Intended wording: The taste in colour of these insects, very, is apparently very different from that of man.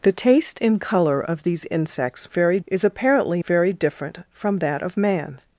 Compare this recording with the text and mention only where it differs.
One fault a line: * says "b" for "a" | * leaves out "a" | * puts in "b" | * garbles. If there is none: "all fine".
all fine